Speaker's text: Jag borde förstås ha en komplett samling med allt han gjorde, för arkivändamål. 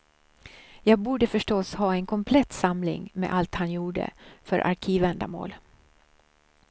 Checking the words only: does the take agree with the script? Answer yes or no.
yes